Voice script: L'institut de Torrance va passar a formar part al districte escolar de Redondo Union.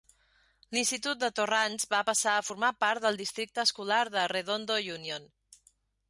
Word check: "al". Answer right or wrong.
wrong